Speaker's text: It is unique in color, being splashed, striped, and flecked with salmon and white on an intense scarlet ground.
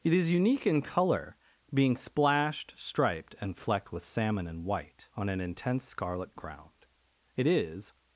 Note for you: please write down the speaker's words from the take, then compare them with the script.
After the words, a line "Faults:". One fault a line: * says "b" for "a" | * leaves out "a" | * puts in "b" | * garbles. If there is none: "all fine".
It is unique in color, being splashed, striped, and flecked with salmon and white on an intense scarlet ground. It is
Faults:
* puts in "It is"